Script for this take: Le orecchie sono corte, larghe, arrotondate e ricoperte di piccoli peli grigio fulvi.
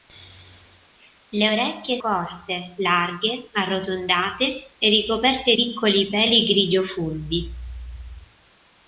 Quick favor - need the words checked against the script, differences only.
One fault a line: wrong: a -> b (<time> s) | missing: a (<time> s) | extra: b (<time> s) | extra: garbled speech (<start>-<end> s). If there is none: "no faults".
missing: sono (2.0 s)
missing: di (5.6 s)